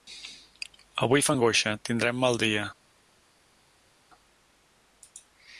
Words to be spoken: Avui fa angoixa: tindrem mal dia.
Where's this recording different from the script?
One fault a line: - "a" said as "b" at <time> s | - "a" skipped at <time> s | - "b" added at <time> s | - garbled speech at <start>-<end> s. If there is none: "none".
none